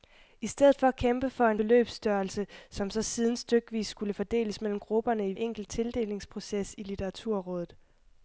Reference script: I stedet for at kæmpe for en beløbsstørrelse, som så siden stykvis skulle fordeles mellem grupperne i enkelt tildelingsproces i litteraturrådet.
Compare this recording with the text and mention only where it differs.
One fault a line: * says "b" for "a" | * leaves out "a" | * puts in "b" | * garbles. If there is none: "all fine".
all fine